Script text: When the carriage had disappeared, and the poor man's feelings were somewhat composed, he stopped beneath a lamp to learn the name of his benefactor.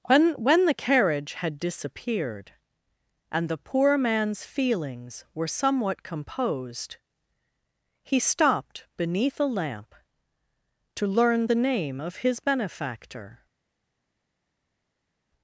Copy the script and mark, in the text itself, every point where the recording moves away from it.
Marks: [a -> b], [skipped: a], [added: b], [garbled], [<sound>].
When [added: when] the carriage had disappeared, and the poor man's feelings were somewhat composed, he stopped beneath a lamp to learn the name of his benefactor.